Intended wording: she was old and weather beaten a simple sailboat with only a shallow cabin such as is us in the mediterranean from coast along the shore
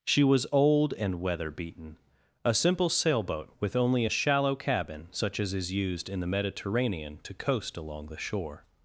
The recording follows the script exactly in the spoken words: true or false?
false